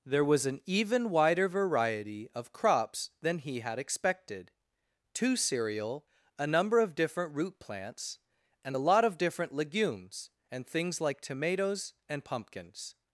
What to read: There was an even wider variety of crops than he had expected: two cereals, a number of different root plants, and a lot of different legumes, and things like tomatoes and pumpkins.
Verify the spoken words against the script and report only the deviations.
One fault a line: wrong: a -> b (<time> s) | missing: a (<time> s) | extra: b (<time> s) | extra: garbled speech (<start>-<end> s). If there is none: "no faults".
wrong: cereals -> cereal (5.3 s)